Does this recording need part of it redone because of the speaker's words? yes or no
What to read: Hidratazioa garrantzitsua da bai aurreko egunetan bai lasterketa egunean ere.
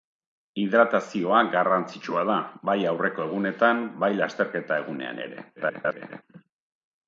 yes